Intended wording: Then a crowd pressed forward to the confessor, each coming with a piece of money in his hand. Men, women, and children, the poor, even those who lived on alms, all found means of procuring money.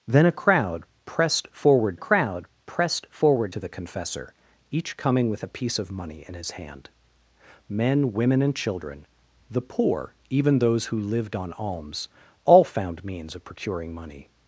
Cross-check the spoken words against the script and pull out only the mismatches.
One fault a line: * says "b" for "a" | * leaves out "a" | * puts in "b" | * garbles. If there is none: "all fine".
* puts in "crowd pressed forward"